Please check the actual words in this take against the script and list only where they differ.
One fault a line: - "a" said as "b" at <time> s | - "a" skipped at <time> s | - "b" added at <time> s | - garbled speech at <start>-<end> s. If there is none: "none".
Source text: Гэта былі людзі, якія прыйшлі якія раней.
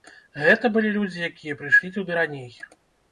- "якія" said as "туды" at 2.0 s